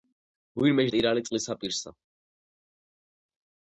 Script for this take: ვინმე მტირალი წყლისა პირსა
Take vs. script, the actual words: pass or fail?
pass